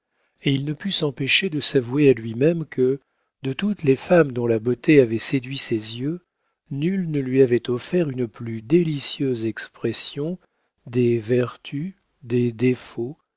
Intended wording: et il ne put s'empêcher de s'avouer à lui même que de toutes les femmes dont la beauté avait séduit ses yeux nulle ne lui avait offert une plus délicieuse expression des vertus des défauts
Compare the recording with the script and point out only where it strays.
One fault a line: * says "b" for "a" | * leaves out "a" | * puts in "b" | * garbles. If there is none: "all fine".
all fine